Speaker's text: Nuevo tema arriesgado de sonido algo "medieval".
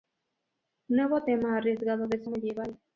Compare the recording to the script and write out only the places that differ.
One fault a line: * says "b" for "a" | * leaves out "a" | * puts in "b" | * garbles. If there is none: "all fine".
* leaves out "sonido algo"